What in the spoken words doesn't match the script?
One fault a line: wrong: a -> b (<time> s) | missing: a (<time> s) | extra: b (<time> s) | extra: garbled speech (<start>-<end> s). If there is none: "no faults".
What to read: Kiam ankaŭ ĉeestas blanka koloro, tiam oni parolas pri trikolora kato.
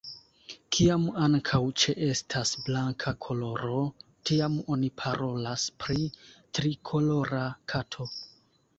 no faults